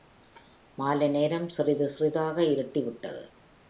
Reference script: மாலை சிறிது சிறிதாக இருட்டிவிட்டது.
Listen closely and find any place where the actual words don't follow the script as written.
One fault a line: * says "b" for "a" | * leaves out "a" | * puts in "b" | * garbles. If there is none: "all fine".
* puts in "நேரம்"